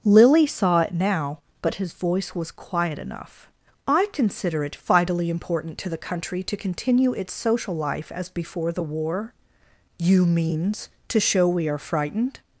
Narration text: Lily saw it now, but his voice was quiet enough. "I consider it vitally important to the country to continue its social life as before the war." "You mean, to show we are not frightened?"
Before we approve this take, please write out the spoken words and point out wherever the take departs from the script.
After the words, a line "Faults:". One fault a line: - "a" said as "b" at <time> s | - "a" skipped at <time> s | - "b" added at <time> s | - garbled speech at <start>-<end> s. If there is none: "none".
Lily saw it now, but his voice was quiet enough. "I consider it vitally important to the country to continue its social life as before the war." "You means, to show we are frightened?"
Faults:
- "mean" said as "means" at 10.2 s
- "not" skipped at 11.8 s